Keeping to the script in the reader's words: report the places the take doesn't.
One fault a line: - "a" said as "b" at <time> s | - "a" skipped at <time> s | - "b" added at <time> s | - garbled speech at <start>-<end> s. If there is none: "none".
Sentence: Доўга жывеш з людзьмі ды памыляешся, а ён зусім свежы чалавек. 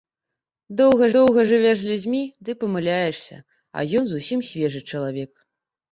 - "доўга" added at 1.1 s